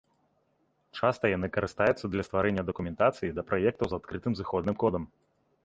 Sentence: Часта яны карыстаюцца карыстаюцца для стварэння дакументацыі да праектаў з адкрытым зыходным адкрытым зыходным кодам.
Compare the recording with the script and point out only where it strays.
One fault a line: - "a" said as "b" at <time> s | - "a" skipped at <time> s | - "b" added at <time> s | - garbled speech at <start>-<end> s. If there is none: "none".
- "карыстаюцца" skipped at 2.0 s
- "адкрытым зыходным" skipped at 4.8 s